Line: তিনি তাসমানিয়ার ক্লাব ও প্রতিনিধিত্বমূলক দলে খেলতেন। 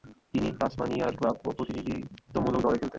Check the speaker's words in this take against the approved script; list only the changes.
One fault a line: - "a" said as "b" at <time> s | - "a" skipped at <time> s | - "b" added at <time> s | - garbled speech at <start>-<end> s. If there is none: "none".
none